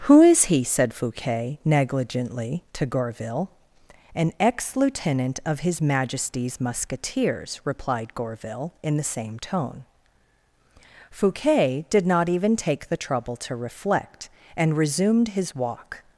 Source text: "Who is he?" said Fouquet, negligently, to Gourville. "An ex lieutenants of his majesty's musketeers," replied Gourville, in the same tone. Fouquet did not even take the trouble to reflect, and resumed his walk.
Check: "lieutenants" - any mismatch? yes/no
yes